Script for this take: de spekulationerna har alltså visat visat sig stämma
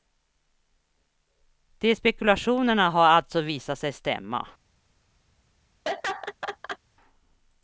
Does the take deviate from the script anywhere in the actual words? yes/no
yes